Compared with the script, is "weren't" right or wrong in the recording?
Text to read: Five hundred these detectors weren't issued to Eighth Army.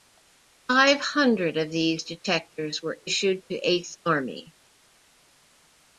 wrong